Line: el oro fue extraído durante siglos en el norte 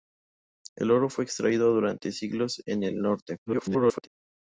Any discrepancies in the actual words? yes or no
yes